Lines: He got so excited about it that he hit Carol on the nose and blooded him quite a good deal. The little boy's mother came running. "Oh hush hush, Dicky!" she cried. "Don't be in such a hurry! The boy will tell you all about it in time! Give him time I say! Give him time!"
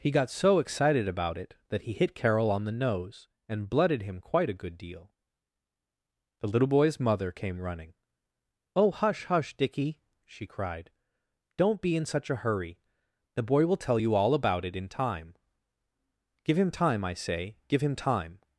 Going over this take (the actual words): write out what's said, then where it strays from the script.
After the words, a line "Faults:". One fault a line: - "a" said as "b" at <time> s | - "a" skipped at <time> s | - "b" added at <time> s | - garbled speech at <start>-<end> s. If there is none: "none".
He got so excited about it that he hit Carol on the nose and blooded him quite a good deal. The little boy's mother came running. "Oh hush hush, Dicky!" she cried. "Don't be in such a hurry! The boy will tell you all about it in time! Give him time I say! Give him time!"
Faults:
none